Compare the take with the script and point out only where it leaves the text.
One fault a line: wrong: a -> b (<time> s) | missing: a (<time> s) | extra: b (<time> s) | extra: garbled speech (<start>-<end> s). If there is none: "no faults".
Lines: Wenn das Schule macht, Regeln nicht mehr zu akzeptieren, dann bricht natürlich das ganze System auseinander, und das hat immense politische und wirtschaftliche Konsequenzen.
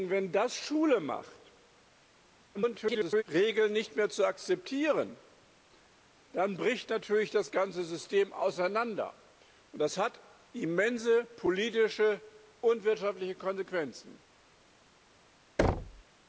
extra: garbled speech (2.5-3.2 s)